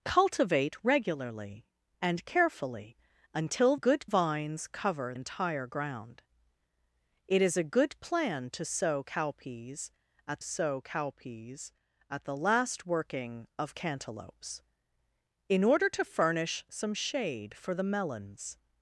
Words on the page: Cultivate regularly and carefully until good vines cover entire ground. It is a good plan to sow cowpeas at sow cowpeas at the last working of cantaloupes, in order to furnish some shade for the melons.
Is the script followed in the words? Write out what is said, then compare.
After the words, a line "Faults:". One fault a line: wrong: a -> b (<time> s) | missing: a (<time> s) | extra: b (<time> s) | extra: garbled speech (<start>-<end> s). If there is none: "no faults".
Cultivate regularly and carefully until good vines cover entire ground. It is a good plan to sow cowpeas at sow cowpeas at the last working of cantaloupes, in order to furnish some shade for the melons.
Faults:
no faults